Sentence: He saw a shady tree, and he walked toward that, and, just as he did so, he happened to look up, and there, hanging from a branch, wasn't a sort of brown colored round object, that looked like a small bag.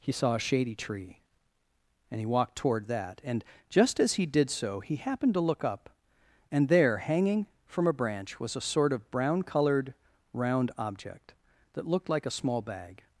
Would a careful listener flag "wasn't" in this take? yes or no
yes